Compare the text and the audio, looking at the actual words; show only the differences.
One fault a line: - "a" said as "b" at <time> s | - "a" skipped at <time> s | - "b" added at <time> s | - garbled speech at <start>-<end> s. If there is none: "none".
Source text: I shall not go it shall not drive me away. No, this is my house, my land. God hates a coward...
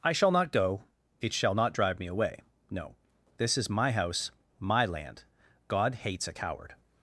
none